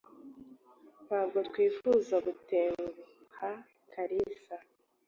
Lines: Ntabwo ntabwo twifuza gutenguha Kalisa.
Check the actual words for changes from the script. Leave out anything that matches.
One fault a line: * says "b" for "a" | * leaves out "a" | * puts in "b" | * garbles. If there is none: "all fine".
* leaves out "ntabwo"